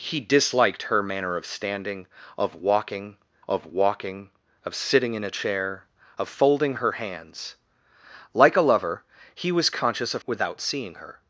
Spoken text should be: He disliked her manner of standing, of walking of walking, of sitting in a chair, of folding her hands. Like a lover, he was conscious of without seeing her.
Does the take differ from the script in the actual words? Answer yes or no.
no